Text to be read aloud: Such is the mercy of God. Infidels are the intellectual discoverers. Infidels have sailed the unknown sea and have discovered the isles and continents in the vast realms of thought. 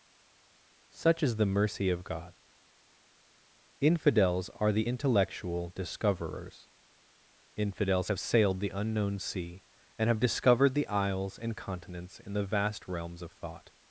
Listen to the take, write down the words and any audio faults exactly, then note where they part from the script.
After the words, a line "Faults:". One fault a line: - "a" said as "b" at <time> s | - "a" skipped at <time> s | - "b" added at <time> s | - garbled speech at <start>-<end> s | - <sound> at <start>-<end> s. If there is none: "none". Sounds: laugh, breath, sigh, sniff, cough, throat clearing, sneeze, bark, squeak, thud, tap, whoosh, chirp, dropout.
Such is the mercy of God. Infidels are the intellectual discoverers. Infidels have sailed the unknown sea and have discovered the isles and continents in the vast realms of thought.
Faults:
none